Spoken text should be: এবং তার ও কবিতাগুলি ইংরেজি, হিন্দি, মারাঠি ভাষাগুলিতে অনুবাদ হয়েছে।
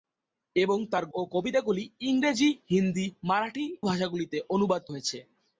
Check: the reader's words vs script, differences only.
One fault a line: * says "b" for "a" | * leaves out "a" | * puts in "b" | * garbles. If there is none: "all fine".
all fine